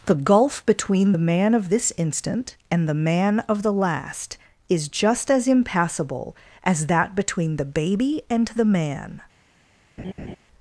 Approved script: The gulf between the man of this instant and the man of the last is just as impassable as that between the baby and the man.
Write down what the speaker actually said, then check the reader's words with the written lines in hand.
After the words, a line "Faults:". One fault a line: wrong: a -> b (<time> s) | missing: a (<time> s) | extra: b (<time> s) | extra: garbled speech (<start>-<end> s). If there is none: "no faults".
The gulf between the man of this instant and the man of the last is just as impassable as that between the baby and the man.
Faults:
no faults